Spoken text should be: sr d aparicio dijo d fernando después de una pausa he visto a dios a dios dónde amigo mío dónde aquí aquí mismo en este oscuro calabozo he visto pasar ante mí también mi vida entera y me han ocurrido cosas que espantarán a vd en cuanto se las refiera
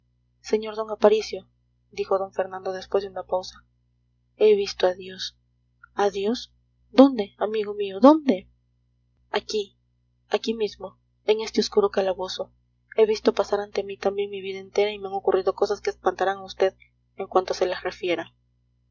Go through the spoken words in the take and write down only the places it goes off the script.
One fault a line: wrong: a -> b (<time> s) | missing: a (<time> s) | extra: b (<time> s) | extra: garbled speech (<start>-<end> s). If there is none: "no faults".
no faults